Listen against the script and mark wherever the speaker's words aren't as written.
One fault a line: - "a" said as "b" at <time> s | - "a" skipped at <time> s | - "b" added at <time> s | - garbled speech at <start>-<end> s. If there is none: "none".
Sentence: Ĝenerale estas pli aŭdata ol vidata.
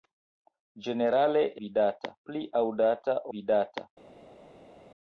- "estas" said as "vidata" at 1.6 s
- "ol" skipped at 3.2 s